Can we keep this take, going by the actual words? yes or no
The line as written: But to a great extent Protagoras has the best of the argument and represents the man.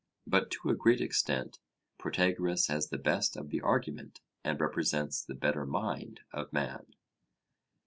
no